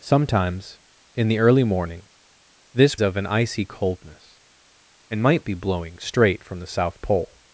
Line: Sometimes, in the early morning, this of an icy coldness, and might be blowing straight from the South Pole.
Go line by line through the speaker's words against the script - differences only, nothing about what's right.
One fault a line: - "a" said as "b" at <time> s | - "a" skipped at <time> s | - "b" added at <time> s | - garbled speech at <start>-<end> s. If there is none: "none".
none